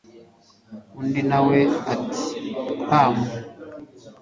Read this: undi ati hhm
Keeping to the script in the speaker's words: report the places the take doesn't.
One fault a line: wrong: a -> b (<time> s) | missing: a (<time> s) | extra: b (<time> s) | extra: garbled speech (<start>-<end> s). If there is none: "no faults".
extra: nawe (1.3 s)